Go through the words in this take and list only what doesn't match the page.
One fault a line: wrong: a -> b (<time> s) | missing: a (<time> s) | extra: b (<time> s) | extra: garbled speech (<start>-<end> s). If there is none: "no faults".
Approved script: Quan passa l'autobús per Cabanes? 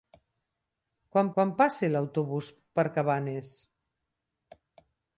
extra: quan (1.4 s)